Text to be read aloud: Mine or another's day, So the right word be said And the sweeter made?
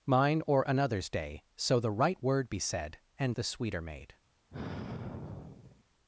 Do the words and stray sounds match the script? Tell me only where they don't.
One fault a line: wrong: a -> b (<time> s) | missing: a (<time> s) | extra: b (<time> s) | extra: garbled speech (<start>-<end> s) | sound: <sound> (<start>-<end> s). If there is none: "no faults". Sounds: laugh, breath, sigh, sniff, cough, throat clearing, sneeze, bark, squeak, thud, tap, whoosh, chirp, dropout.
sound: sigh (4.5-5.8 s)